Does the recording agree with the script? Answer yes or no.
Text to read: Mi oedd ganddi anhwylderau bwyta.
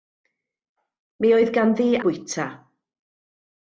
no